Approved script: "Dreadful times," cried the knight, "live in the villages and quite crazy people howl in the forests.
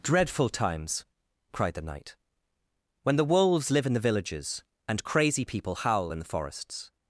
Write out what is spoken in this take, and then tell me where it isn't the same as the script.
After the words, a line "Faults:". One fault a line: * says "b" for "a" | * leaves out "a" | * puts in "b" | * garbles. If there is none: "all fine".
"Dreadful times," cried the knight, "when the wolves live in the villages and crazy people howl in the forests.
Faults:
* puts in "when the wolves"
* leaves out "quite"